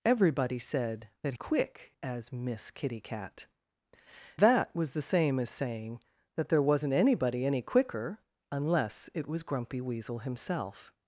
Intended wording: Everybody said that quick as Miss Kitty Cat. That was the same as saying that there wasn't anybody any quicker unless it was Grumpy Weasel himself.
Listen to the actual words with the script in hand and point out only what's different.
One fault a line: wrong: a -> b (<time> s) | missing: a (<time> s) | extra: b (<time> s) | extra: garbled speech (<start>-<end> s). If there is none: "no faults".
no faults